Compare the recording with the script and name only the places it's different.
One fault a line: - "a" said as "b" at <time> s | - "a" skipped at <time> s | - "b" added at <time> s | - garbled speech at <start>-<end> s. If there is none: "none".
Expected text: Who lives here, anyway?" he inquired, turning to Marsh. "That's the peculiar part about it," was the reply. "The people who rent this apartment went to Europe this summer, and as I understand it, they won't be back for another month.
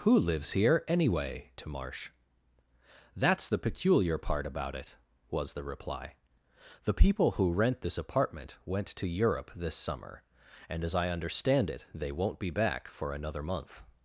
- "he inquired turning" skipped at 1.5 s